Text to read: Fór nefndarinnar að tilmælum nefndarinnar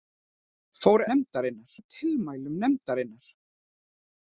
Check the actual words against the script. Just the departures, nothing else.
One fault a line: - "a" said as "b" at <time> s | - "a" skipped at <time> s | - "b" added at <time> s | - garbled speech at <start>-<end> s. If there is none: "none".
none